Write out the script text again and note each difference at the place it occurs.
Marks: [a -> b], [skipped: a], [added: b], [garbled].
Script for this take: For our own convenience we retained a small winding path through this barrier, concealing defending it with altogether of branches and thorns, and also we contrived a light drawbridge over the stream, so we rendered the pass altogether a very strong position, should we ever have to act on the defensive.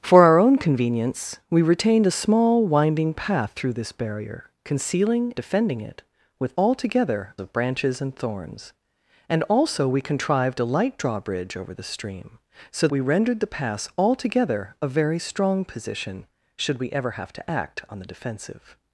For our own convenience we retained a small winding path through this barrier, concealing defending it with altogether of branches and thorns, and also we contrived a light drawbridge over the stream, so we rendered the pass altogether a very strong position, should we ever have to act on the defensive.